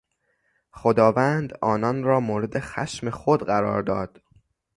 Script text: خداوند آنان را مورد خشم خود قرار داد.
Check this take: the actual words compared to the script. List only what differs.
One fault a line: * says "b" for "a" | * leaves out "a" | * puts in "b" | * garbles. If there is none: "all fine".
all fine